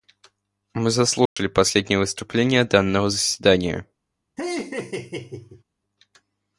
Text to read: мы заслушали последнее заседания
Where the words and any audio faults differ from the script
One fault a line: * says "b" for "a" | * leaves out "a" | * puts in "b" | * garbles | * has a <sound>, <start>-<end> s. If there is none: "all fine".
* has a dropout, 1.3-1.4 s
* puts in "выступление данного"
* has a laugh, 4.4-5.6 s